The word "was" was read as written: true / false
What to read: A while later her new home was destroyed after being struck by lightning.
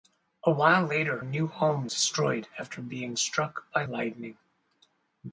false